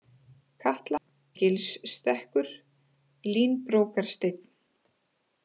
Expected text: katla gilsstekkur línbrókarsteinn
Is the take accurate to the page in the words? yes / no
yes